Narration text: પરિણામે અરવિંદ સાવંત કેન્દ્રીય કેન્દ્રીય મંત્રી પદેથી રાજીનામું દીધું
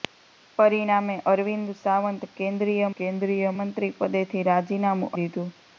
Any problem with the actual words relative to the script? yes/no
no